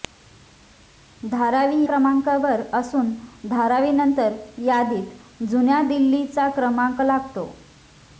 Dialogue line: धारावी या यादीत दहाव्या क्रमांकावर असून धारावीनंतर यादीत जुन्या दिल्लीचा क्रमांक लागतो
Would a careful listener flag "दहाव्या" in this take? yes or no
yes